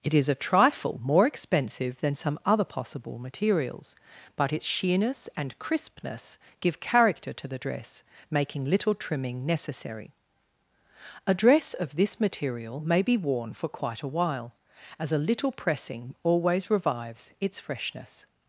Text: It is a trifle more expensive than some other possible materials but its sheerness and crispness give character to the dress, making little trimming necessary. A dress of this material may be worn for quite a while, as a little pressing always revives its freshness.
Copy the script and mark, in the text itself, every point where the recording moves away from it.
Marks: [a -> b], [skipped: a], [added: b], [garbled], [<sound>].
It is a trifle more expensive than some other possible materials but its sheerness and crispness give character to the dress, making little trimming necessary. A dress of this material may be worn for quite a while, as a little pressing always revives its freshness.